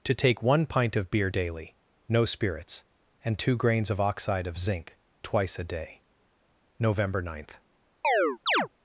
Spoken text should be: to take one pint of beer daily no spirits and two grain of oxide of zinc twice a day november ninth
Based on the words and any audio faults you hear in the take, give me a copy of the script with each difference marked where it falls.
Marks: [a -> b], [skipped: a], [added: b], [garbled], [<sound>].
to take one pint of beer daily no spirits and two [grain -> grains] of oxide of zinc twice a day november ninth [chirp]